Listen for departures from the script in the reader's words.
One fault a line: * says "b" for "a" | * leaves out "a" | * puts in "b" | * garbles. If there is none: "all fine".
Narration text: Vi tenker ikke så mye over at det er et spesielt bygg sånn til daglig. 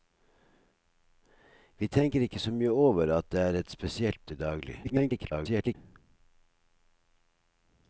* leaves out "bygg sånn"
* garbles